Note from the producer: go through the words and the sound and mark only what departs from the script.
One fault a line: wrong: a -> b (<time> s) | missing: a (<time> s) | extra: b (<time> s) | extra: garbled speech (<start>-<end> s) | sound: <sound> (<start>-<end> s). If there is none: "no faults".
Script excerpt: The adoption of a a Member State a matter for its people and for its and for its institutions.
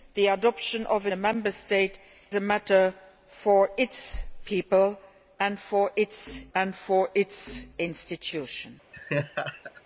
sound: laugh (8.9-9.8 s)